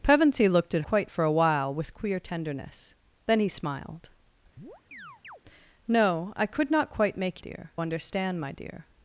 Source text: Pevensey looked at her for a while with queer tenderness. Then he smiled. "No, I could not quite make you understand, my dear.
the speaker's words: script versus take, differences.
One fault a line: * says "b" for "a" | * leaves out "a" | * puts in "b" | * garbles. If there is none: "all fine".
* says "quite" for "her"
* says "dear" for "you"